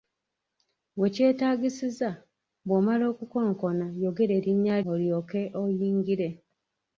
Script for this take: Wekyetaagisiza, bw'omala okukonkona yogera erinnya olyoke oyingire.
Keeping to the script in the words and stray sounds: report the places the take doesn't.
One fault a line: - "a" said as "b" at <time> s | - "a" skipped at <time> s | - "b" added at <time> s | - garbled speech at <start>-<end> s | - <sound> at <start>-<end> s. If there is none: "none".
none